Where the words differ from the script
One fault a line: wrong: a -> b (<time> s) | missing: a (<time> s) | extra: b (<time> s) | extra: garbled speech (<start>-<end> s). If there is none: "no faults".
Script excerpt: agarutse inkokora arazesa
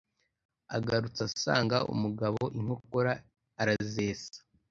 extra: asanga umugabo (1.3 s)